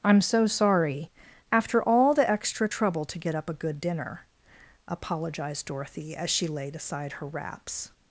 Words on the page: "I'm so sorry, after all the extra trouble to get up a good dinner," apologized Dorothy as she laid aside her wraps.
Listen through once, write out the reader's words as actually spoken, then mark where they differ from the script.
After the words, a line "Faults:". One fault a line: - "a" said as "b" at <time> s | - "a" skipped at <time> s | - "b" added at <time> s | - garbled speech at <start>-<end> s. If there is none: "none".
"I'm so sorry, after all the extra trouble to get up a good dinner," apologized Dorothy as she laid aside her wraps.
Faults:
none